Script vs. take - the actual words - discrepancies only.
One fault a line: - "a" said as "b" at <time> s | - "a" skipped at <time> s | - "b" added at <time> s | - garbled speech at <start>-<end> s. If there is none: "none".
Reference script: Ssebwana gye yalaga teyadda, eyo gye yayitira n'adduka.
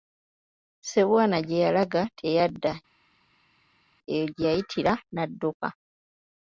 none